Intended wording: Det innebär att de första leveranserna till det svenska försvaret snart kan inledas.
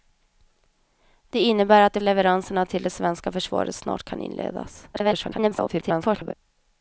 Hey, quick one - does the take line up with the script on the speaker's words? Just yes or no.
no